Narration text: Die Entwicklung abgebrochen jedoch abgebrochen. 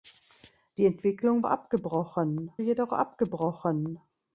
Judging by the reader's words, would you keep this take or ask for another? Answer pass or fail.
pass